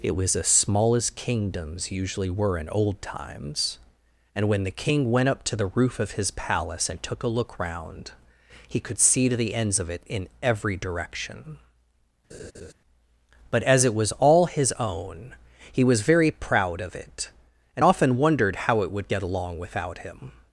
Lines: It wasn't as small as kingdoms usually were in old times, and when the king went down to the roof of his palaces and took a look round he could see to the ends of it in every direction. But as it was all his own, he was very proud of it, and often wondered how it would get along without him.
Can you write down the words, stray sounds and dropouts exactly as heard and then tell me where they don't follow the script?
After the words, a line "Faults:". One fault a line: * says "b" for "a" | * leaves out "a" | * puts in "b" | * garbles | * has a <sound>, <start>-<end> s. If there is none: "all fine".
It was as small as kingdoms usually were in old times, and when the king went up to the roof of his palace and took a look round he could see to the ends of it in every direction. But as it was all his own, he was very proud of it, and often wondered how it would get along without him.
Faults:
* says "was" for "wasn't"
* says "up" for "down"
* says "palace" for "palaces"
* has a laugh, 12.3-12.7 s